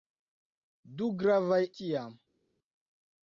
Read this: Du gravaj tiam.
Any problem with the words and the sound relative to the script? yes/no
no